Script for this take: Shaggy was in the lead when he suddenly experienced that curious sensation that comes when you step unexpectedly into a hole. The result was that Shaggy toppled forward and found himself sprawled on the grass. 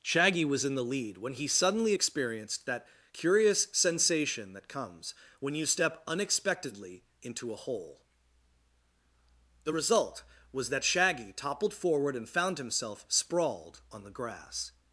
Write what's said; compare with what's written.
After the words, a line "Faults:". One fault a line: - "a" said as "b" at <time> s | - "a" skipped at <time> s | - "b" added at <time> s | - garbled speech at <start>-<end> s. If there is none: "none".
Shaggy was in the lead when he suddenly experienced that curious sensation that comes when you step unexpectedly into a hole. The result was that Shaggy toppled forward and found himself sprawled on the grass.
Faults:
none